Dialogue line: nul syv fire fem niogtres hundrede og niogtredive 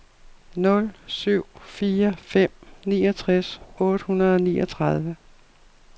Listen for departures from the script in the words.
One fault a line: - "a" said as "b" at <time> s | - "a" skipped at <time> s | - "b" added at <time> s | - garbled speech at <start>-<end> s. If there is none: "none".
- "otte" added at 3.8 s